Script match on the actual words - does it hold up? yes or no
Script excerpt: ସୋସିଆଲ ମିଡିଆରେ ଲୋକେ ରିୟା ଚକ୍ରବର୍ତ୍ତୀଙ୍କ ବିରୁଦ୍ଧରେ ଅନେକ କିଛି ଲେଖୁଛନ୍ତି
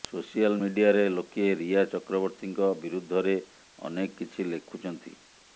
yes